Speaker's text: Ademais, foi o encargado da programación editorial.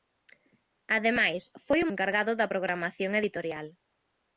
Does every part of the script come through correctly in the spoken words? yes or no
yes